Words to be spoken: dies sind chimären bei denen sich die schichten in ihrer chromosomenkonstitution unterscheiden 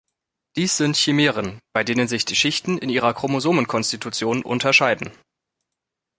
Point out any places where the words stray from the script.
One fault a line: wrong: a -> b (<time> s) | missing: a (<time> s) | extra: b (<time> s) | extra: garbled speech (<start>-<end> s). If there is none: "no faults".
no faults